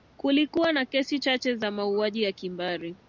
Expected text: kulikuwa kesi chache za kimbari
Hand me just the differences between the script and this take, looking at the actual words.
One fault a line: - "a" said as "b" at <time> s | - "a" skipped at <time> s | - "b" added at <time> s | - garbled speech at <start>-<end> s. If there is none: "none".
- "na" added at 0.7 s
- "mauaji ya" added at 1.7 s